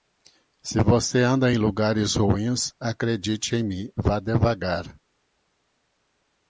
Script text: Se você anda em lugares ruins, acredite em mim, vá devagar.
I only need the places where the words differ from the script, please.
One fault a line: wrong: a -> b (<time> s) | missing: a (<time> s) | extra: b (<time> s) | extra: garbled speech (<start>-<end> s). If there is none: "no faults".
no faults